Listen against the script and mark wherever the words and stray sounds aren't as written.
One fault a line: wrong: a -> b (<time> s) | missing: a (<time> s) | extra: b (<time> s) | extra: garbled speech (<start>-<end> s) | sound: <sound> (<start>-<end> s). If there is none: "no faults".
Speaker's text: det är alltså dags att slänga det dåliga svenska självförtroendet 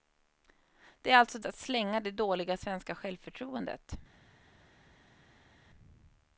missing: dags (1.4 s)